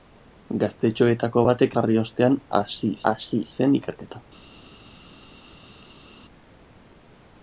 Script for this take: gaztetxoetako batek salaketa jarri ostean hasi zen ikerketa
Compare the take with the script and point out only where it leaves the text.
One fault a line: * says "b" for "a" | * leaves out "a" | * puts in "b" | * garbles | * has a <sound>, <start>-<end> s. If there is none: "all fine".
* leaves out "salaketa"
* puts in "hasi"